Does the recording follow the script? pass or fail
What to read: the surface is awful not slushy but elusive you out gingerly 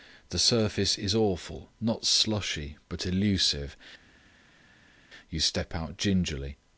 fail